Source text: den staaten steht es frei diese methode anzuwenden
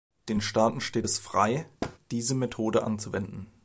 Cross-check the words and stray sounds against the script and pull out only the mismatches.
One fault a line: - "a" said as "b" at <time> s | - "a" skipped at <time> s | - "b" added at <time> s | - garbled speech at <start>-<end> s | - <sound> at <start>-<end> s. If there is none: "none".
- thud at 1.8-2.0 s